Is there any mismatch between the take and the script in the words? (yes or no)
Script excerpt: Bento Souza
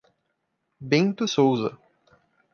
no